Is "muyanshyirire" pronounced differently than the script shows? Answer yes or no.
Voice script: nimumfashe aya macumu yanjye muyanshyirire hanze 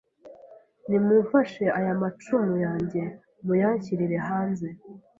no